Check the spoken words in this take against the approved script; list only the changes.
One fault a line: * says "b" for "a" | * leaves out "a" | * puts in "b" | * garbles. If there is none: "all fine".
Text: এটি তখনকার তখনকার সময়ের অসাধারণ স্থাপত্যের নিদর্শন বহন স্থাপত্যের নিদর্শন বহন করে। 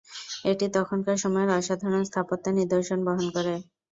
* leaves out "তখনকার"
* leaves out "স্থাপত্যের নিদর্শন বহন"